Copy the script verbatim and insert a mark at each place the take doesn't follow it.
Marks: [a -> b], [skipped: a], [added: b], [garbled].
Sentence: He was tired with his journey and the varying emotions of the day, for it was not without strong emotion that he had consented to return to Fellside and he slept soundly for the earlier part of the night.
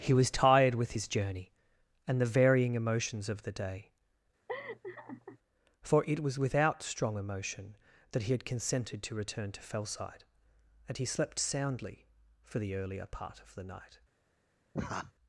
He was tired with his journey and the varying emotions of the day, for it was [skipped: not] without strong emotion that he had consented to return to Fellside and he slept soundly for the earlier part of the night.